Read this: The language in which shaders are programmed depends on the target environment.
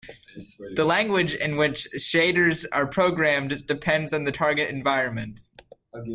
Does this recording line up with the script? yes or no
yes